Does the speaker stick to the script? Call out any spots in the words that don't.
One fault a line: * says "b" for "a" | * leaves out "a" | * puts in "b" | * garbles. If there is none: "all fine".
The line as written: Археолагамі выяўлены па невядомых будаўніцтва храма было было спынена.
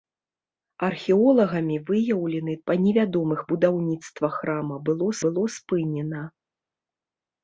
all fine